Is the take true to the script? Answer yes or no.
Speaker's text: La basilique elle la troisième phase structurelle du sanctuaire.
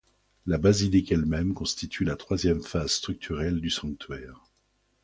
no